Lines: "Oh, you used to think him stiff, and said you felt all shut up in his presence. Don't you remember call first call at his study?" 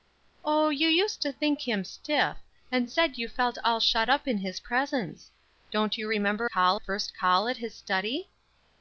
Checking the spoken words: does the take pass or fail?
pass